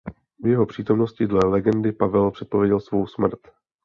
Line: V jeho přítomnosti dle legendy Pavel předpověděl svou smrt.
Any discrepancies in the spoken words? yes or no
no